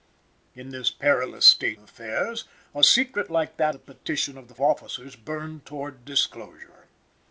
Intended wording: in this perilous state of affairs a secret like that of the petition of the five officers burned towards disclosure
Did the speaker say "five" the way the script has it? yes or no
no